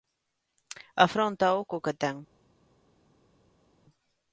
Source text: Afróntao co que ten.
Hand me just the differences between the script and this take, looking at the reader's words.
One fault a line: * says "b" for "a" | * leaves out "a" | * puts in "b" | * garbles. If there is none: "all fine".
all fine